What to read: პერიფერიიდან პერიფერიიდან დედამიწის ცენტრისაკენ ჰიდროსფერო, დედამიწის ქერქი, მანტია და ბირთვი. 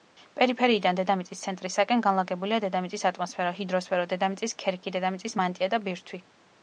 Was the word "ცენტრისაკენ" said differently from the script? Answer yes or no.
yes